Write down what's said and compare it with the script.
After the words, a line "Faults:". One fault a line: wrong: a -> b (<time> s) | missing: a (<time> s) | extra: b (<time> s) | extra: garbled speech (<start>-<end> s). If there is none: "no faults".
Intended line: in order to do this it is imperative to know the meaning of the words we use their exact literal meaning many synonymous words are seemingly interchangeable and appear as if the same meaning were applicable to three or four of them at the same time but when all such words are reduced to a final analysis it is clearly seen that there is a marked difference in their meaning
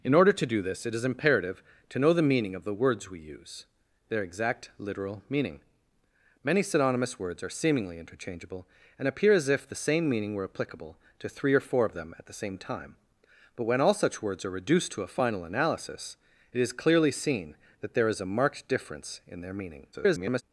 in order to do this it is imperative to know the meaning of the words we use their exact literal meaning many synonymous words are seemingly interchangeable and appear as if the same meaning were applicable to three or four of them at the same time but when all such words are reduced to a final analysis it is clearly seen that there is a marked difference in their meaning [garbled]
Faults:
extra: garbled speech (19.9-20.4 s)